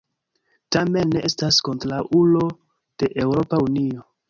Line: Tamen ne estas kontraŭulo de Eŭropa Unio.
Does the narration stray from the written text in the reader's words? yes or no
no